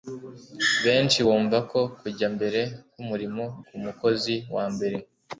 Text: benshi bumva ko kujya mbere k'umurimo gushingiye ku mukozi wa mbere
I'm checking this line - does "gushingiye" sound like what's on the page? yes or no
no